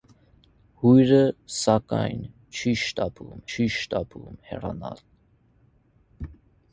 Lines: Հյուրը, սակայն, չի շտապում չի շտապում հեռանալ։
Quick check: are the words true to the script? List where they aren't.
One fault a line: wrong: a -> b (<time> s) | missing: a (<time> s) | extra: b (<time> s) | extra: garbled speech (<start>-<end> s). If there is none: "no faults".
no faults